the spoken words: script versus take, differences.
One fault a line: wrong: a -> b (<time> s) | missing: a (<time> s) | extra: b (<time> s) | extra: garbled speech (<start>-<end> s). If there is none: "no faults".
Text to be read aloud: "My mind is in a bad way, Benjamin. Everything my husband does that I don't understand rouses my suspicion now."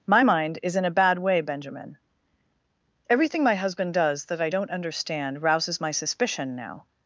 no faults